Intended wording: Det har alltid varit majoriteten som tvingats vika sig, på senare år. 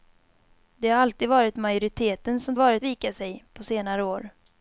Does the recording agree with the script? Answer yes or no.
no